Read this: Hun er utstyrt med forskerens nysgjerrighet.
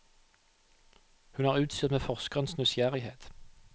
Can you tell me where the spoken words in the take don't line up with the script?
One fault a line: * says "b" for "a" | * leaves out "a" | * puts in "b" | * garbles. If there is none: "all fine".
all fine